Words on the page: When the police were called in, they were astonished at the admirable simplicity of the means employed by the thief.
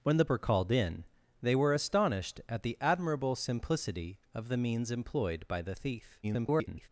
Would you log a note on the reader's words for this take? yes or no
yes